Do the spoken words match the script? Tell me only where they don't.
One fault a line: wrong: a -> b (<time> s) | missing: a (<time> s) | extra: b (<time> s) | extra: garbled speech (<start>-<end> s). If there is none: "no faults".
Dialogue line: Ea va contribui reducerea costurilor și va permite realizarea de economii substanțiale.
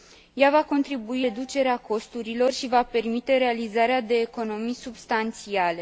no faults